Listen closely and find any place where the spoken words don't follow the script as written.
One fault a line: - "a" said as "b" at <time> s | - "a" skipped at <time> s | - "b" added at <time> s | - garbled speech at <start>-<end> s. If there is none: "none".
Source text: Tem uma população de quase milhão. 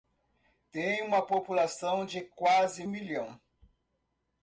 none